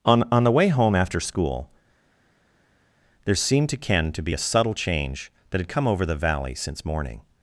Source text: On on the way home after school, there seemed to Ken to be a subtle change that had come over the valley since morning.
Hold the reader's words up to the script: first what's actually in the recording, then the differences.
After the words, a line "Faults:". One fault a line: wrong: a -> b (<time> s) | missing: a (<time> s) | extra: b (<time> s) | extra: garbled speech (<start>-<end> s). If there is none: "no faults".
On on the way home after school, there seemed to Ken to be a subtle change that had come over the valley since morning.
Faults:
no faults